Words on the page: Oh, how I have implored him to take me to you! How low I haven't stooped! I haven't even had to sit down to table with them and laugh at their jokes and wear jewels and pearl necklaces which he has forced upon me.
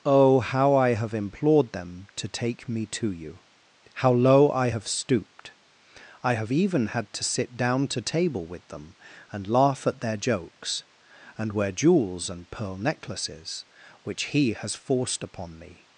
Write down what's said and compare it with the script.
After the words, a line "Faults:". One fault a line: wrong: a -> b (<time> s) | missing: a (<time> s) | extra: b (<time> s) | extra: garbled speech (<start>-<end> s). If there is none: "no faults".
Oh, how I have implored them to take me to you! How low I have stooped! I have even had to sit down to table with them and laugh at their jokes and wear jewels and pearl necklaces which he has forced upon me.
Faults:
wrong: him -> them (1.7 s)
wrong: haven't -> have (4.7 s)
wrong: haven't -> have (6.3 s)